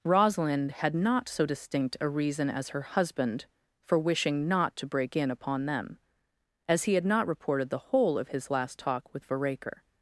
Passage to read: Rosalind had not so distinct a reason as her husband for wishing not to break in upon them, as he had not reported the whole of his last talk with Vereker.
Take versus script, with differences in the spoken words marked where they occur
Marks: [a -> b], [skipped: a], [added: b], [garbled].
Rosalind had not so distinct a reason as her husband for wishing not to break in upon them, as he had not reported the whole of his last talk with Vereker.